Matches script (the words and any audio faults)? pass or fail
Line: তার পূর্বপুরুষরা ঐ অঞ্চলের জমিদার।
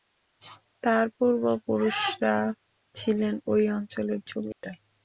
fail